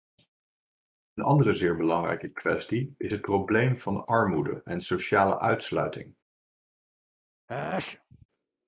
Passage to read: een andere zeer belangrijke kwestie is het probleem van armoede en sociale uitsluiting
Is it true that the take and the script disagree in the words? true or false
false